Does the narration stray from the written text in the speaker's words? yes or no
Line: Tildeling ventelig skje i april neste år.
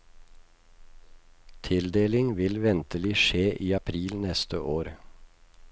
yes